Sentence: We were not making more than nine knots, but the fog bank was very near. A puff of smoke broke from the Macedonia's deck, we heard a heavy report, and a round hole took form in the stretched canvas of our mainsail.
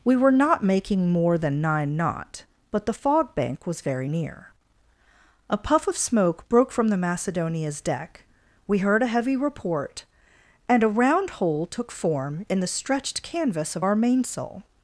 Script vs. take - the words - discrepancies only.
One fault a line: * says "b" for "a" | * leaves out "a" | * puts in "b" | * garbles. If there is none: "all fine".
* says "knot" for "knots"